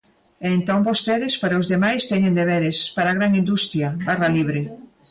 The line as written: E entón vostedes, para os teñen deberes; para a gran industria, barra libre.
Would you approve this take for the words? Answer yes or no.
no